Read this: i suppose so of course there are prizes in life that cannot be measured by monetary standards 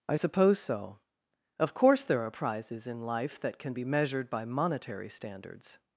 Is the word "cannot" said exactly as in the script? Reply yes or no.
no